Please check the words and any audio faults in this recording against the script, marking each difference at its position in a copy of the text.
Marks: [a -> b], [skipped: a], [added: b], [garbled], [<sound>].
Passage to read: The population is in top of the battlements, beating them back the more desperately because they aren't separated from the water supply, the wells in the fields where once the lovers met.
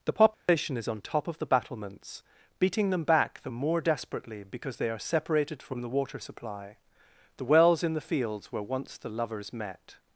The population [dropout] is [in -> on] top of the battlements, beating them back the more desperately because they [aren't -> are] separated from the water supply, the wells in the fields where once the lovers met.